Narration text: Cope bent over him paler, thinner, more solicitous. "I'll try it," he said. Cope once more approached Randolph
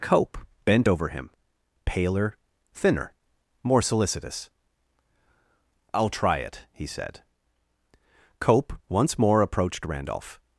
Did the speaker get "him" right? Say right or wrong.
right